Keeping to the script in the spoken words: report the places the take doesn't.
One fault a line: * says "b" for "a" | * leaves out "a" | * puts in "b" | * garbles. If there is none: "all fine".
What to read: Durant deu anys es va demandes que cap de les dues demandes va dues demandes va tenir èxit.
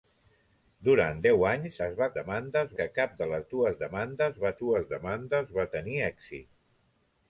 all fine